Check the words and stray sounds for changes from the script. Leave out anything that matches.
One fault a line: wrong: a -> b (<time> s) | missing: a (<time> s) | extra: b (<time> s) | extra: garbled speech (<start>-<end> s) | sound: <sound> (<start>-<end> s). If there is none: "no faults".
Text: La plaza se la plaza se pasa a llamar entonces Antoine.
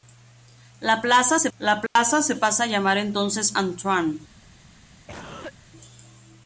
sound: dropout (1.9-2.0 s)
sound: cough (5.1-5.5 s)